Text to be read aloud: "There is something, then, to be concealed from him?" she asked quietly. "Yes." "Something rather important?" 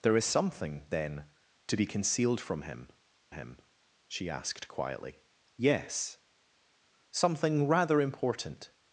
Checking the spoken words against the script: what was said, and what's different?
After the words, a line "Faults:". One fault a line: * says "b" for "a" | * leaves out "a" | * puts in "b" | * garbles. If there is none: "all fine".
"There is something, then, to be concealed from him him?" she asked quietly. "Yes." "Something rather important?"
Faults:
* puts in "him"